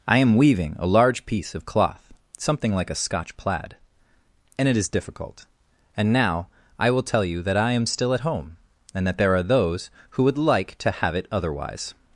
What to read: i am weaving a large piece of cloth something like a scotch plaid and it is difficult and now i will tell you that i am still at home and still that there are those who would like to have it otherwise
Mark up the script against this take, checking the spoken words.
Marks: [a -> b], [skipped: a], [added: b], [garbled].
i am weaving a large piece of cloth something like a scotch plaid and it is difficult and now i will tell you that i am still at home and [skipped: still] that there are those who would like to have it otherwise